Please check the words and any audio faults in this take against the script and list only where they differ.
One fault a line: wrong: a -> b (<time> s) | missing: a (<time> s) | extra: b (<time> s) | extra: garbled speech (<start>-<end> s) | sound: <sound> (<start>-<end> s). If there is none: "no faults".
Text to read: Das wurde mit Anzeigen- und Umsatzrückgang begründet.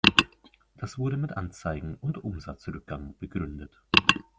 no faults